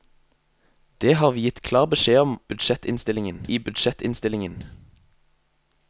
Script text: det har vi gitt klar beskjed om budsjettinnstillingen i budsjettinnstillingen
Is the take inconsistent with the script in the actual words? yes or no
no